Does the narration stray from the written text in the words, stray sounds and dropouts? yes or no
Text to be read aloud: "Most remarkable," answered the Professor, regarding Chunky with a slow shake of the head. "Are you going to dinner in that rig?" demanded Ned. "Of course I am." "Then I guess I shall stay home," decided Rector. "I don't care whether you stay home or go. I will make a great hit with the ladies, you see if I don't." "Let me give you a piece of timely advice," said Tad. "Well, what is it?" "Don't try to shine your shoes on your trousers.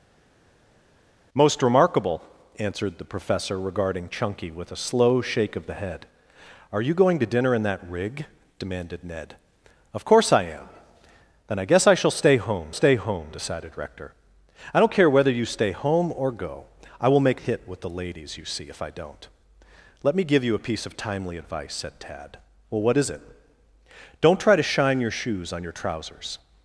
yes